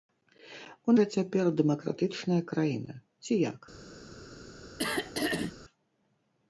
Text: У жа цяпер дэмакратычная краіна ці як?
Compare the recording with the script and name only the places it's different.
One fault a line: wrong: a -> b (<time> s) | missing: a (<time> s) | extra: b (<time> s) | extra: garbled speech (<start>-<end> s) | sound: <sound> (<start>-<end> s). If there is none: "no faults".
sound: throat clearing (4.8-5.5 s)